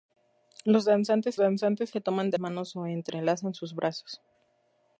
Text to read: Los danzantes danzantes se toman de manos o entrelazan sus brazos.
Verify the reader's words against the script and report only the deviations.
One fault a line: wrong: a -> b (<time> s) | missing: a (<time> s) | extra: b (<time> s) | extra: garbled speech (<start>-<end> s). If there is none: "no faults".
no faults